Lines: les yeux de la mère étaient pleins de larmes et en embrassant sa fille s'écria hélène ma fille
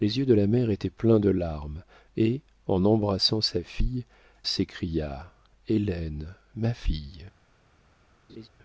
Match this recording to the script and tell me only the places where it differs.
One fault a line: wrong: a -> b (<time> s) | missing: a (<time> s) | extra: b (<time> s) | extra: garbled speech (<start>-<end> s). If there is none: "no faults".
no faults